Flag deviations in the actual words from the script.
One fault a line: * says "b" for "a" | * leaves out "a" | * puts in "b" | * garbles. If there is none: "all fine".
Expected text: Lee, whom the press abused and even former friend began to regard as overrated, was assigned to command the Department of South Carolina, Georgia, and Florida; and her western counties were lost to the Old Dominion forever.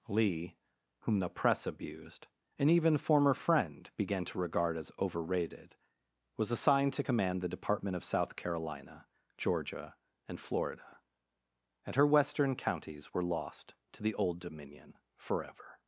all fine